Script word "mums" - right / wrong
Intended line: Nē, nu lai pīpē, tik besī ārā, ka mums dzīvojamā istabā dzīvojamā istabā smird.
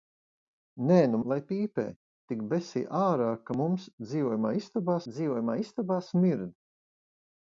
right